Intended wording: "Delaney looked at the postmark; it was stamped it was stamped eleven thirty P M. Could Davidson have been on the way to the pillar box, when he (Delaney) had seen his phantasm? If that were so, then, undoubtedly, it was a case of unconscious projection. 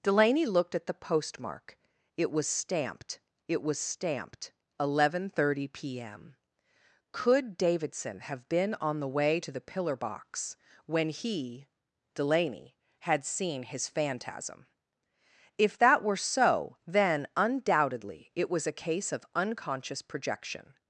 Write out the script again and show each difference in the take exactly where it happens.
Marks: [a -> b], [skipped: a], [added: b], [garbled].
"Delaney looked at the postmark; it was stamped it was stamped eleven thirty P M. Could Davidson have been on the way to the pillar box, when he (Delaney) had seen his phantasm? If that were so, then, undoubtedly, it was a case of unconscious projection.